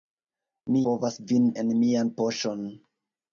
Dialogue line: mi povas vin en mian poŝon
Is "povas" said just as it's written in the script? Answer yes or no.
yes